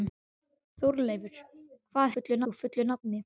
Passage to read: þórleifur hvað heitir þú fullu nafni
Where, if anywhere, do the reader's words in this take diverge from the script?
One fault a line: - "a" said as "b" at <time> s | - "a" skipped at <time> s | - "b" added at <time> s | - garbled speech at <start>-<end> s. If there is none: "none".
- "heitir" said as "fullu" at 2.1 s